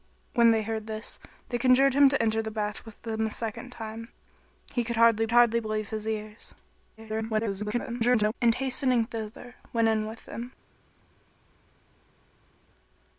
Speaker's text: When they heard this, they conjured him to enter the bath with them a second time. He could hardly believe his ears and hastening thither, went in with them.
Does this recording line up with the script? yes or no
no